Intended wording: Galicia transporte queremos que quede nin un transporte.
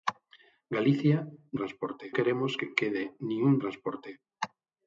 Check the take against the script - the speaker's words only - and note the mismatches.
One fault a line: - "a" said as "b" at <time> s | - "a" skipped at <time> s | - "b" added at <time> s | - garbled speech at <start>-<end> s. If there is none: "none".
none